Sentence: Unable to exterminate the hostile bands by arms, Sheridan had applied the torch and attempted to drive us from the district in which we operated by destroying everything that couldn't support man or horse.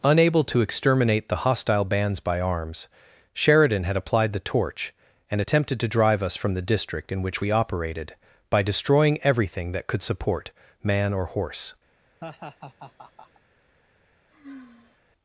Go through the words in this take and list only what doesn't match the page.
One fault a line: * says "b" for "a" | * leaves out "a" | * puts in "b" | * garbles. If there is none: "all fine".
* says "could" for "couldn't"